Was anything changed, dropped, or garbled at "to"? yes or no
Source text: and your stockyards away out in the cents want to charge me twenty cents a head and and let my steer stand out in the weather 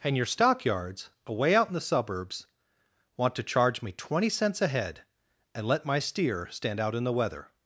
no